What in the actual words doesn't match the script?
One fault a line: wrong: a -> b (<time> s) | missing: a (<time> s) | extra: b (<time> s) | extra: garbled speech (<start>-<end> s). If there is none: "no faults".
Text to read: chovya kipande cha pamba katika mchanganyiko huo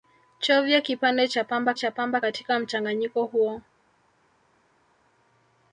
extra: cha pamba (1.7 s)